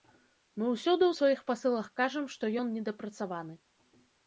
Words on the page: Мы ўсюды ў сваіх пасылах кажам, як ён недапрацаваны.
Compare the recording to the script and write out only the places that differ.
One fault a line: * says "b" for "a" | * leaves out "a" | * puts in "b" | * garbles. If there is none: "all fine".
* says "што" for "як"